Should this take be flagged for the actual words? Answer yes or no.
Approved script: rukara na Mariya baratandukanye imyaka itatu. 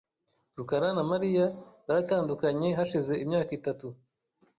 yes